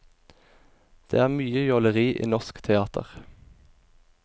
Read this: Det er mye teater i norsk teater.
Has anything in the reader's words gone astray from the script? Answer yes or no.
yes